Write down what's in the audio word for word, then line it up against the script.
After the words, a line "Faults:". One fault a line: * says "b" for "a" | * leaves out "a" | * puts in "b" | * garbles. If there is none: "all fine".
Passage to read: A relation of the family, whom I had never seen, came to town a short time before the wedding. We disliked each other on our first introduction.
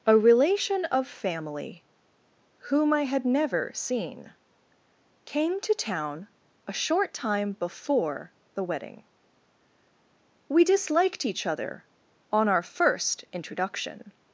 A relation of family, whom I had never seen, came to town a short time before the wedding. We disliked each other on our first introduction.
Faults:
* leaves out "the"